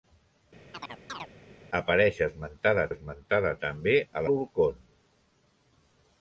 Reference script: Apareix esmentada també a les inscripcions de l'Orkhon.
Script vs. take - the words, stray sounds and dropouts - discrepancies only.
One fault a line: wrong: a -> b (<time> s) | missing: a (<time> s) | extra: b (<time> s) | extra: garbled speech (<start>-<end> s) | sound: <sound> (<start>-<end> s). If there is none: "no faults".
sound: chirp (0.7-1.3 s)
extra: esmentada (2.9 s)
missing: les inscripcions de (4.2 s)